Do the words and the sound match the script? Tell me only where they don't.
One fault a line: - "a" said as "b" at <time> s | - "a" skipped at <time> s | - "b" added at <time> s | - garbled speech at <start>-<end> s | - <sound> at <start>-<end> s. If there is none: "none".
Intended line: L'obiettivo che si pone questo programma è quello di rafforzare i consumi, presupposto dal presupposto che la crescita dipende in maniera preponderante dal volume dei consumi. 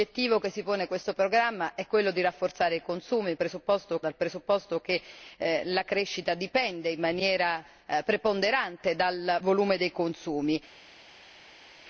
none